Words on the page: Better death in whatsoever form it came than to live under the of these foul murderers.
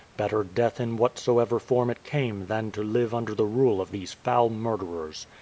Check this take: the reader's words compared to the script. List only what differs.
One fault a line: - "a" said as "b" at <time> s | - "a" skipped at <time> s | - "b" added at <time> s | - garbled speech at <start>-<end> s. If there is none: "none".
- "rule" added at 3.5 s